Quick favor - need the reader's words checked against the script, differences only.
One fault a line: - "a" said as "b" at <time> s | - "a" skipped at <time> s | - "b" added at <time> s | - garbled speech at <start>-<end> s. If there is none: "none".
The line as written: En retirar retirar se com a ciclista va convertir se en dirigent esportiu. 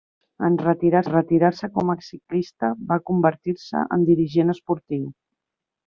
none